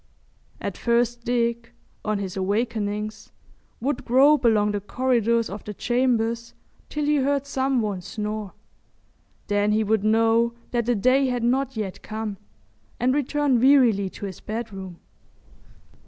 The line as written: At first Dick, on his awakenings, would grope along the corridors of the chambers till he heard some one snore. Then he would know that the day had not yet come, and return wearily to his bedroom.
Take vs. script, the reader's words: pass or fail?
pass